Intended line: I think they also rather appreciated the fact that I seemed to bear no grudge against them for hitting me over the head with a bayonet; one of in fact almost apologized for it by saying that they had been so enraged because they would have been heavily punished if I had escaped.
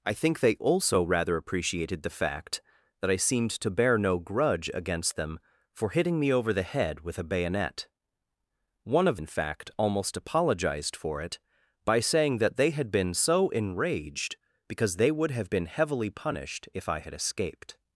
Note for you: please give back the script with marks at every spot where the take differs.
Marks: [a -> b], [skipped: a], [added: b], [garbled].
I think they also rather appreciated the fact that I seemed to bear no grudge against them for hitting me over the head with a bayonet; one of in fact almost apologized for it by saying that they had been so enraged because they would have been heavily punished if I had escaped.